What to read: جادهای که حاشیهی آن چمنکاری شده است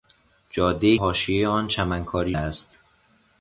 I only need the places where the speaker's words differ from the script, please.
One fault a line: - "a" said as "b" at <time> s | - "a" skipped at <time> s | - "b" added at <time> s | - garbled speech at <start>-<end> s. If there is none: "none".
- "که" skipped at 1.0 s
- "شده" skipped at 2.3 s